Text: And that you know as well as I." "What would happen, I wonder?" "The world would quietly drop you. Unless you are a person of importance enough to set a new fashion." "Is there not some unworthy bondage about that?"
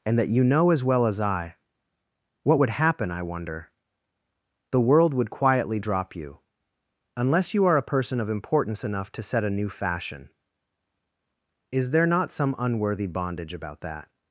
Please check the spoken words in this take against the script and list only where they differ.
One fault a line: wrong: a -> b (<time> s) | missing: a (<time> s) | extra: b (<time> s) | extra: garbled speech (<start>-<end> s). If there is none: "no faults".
no faults